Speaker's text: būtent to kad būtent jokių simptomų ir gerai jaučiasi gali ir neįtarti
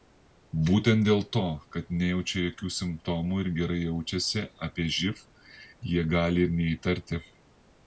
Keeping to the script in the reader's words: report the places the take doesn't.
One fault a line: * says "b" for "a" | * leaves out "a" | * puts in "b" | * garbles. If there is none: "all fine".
* puts in "dėl"
* says "nejaučia" for "būtent"
* puts in "apie živ jie"